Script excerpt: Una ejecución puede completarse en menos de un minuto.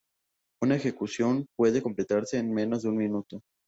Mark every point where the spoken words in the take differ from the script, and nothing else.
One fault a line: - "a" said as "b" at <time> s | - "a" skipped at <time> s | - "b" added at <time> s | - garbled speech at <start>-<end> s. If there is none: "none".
none